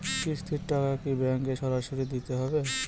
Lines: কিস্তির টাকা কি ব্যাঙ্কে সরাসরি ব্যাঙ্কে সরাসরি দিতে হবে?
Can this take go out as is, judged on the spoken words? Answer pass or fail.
fail